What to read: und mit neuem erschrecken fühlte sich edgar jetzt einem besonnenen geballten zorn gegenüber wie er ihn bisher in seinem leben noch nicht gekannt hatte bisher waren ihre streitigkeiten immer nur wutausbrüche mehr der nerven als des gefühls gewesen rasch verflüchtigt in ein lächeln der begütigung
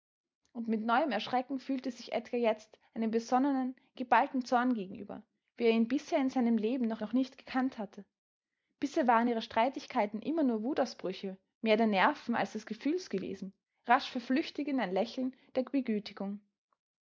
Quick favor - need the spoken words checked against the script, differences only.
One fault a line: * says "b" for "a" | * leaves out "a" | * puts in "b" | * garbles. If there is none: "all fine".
* puts in "noch"